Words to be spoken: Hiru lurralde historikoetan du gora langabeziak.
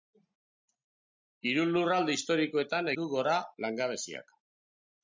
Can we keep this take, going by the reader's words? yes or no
yes